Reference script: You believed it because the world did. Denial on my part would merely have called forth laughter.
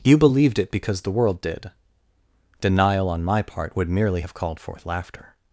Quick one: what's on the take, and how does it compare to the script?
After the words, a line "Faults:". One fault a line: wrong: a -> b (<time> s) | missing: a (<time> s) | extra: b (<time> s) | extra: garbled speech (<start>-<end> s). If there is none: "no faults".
You believed it because the world did. Denial on my part would merely have called forth laughter.
Faults:
no faults